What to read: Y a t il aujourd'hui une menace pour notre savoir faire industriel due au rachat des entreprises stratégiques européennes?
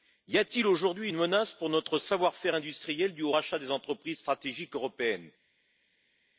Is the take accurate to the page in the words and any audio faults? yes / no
yes